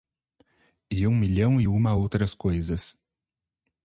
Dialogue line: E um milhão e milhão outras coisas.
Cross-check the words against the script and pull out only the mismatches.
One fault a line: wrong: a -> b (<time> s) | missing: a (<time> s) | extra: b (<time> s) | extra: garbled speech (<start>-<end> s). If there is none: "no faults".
wrong: milhão -> uma (1.7 s)